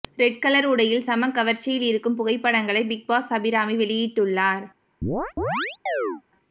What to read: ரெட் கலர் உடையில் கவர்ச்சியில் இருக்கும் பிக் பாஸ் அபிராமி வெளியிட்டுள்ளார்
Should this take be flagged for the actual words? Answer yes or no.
yes